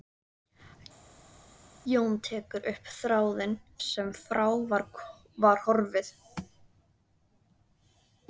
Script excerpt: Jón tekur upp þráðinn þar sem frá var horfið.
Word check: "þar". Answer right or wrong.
wrong